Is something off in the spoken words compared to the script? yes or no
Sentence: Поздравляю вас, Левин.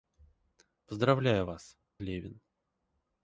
no